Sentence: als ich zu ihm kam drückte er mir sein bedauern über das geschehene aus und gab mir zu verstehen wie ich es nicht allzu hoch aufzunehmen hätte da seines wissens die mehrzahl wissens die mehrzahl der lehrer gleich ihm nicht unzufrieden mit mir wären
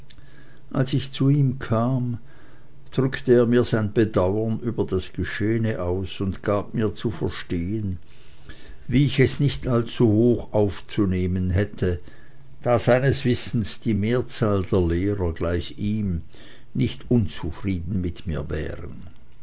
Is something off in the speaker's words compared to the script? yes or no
yes